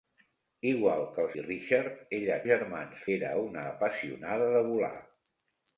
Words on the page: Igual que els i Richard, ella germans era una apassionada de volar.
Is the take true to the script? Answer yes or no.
yes